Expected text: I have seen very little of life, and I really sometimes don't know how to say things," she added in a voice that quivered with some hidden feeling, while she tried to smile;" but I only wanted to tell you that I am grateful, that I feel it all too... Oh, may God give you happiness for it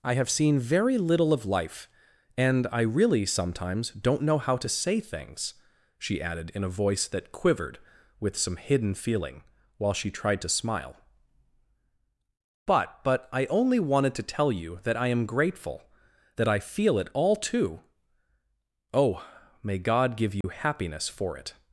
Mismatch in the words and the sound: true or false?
true